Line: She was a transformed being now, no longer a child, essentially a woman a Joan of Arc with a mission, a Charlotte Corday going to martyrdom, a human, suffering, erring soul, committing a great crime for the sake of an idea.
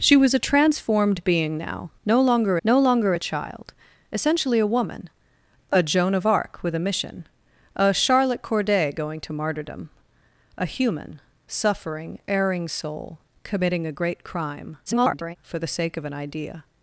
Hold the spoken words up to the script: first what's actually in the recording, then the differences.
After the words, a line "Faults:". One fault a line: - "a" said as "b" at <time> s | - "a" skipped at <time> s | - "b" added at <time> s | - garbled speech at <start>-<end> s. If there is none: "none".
She was a transformed being now, no longer no longer a child, essentially a woman a Joan of Arc with a mission, a Charlotte Corday going to martyrdom, a human, suffering, erring soul, committing a great crime [garbled] for the sake of an idea.
Faults:
- "no longer" added at 2.7 s
- garbled speech at 14.9-15.4 s